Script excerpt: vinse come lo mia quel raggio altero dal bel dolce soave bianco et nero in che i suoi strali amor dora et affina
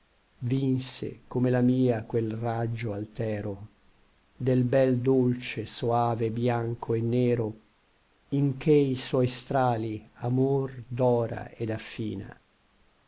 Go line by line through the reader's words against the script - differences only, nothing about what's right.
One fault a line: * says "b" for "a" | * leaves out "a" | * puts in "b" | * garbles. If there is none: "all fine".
* says "la" for "lo"
* says "del" for "dal"